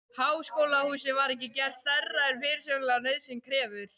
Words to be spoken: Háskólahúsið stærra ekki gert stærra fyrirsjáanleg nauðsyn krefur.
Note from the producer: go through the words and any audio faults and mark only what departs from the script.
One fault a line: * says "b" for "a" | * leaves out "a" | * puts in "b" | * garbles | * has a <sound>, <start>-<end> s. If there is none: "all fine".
* says "var" for "stærra"
* puts in "en"